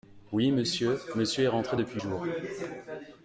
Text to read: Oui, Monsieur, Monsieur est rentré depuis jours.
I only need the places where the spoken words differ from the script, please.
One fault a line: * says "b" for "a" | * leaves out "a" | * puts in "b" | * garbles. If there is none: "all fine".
all fine